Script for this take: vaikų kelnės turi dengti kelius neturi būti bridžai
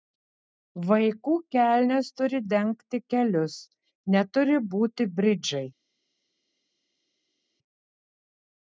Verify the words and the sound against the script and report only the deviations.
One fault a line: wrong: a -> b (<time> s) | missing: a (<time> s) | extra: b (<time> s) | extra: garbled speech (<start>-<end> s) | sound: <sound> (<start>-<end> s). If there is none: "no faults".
no faults